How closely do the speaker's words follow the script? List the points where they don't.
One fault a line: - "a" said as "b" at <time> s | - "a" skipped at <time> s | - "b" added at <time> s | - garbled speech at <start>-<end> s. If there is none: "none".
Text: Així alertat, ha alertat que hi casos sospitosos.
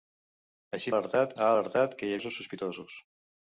none